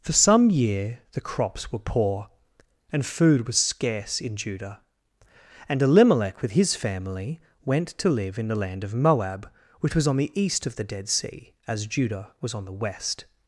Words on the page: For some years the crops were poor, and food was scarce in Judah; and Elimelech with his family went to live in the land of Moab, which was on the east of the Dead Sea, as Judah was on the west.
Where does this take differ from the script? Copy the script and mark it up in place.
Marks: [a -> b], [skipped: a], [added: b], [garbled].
For some [years -> year] the crops were poor, and food was scarce in Judah; and Elimelech with his family went to live in the land of Moab, which was on the east of the Dead Sea, as Judah was on the west.